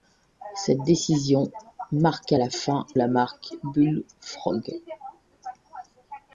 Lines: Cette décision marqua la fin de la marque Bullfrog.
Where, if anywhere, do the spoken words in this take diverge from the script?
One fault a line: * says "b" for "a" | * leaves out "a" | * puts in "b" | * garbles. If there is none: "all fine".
* leaves out "de"